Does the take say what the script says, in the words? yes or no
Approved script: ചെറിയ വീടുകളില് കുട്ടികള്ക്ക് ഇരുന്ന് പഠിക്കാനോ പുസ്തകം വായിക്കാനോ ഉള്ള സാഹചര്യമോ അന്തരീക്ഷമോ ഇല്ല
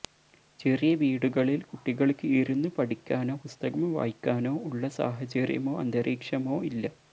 yes